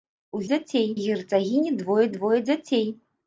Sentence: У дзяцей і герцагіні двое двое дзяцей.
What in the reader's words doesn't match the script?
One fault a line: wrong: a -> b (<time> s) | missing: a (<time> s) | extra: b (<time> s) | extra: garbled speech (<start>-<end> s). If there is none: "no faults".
no faults